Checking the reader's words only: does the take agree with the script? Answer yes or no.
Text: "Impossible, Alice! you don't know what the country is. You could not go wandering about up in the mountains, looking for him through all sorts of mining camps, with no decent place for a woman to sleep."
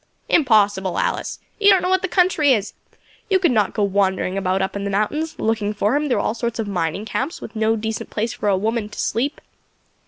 yes